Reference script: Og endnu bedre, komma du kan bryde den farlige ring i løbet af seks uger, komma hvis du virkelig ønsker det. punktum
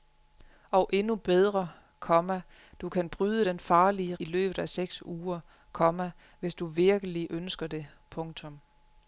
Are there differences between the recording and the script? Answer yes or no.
yes